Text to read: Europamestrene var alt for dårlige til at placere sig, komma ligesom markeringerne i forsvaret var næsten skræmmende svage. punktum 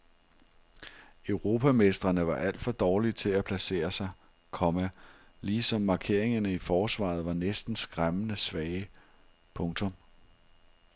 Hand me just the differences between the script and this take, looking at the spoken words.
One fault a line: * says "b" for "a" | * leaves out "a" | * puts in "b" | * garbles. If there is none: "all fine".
all fine